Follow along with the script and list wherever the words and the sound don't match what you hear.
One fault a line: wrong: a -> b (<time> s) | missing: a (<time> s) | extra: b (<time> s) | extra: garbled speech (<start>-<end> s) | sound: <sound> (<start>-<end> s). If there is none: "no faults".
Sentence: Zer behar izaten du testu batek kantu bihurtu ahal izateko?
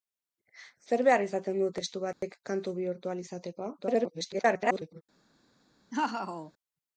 sound: dropout (2.1-2.2 s)
extra: garbled speech (3.8-5.0 s)
sound: laugh (5.9-6.5 s)